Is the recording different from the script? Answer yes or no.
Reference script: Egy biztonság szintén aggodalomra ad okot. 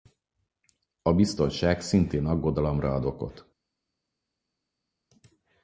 yes